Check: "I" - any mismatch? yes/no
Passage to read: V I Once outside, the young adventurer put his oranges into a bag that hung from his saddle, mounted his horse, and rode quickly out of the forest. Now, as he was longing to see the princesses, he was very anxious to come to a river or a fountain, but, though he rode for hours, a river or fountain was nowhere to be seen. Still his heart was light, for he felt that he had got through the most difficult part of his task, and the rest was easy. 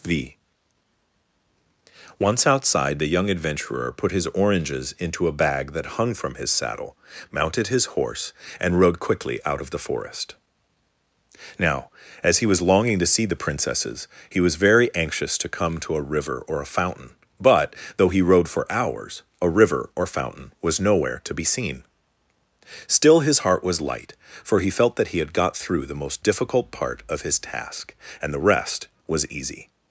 yes